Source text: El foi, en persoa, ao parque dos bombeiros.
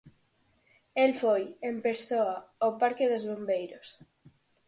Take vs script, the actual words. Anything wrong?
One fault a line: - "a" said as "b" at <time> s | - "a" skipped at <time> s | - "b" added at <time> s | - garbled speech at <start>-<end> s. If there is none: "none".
none